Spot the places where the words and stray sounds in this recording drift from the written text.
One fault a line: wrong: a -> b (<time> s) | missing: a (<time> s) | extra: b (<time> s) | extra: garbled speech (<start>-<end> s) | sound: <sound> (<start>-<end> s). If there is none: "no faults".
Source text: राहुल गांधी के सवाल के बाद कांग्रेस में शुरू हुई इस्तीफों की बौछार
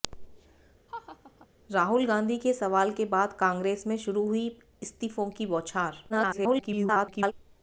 sound: laugh (0.9-1.5 s)
extra: garbled speech (6.1-7.3 s)